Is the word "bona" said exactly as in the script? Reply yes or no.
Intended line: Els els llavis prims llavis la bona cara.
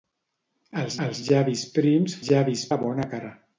yes